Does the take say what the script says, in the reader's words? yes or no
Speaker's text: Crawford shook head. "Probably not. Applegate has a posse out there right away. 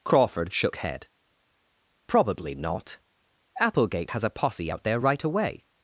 yes